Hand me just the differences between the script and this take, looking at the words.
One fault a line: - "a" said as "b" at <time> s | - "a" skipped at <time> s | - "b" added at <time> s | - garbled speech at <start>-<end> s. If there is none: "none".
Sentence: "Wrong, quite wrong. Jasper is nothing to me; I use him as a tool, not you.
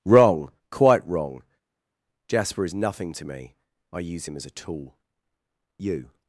- "not" skipped at 5.0 s